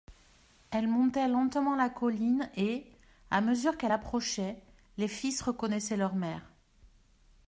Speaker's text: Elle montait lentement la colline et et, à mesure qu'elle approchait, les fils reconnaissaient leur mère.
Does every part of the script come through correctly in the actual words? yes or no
no